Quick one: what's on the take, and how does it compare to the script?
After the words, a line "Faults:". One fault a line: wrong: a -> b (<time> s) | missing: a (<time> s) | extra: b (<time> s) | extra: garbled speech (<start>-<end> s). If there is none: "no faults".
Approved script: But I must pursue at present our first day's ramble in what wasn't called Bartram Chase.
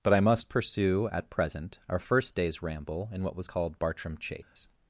But I must pursue at present our first day's ramble in what was called Bartram Chase.
Faults:
wrong: wasn't -> was (3.4 s)